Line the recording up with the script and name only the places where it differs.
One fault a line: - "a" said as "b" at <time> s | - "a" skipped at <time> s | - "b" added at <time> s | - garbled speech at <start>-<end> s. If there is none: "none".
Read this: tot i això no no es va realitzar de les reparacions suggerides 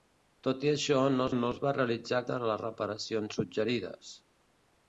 none